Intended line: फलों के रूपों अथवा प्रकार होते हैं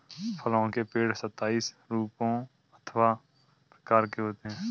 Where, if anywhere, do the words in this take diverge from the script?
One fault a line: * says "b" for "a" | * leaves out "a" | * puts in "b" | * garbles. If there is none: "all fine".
* puts in "पेड़ सताइस"
* puts in "के"